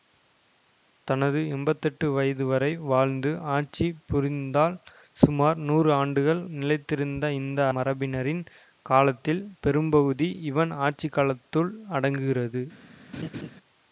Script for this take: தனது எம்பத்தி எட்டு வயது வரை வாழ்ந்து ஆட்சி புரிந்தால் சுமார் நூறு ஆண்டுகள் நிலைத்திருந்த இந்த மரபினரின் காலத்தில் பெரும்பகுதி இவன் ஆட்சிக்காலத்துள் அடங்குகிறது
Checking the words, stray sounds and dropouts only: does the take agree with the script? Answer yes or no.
no